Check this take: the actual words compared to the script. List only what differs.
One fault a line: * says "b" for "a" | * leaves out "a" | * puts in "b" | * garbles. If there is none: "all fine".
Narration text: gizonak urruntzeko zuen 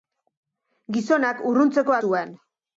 all fine